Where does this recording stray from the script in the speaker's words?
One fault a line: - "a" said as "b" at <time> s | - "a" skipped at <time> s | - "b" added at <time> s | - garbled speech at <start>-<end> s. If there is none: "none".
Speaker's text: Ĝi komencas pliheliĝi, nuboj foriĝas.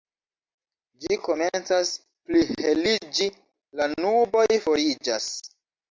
- "la" added at 3.8 s